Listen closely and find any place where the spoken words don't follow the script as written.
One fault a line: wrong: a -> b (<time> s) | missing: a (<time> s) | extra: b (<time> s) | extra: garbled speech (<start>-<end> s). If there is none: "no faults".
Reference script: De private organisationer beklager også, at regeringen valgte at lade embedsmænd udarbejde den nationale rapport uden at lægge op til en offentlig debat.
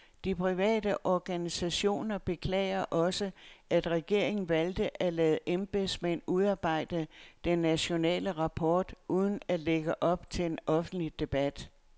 no faults